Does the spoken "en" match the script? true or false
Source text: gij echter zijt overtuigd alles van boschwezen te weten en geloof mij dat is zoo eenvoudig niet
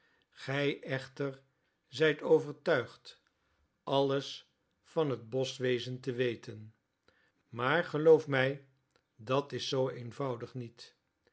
false